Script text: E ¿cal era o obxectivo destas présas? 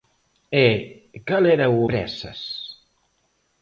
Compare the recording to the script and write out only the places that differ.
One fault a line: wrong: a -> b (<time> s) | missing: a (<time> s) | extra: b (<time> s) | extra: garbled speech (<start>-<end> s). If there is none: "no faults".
missing: obxectivo destas (1.8 s)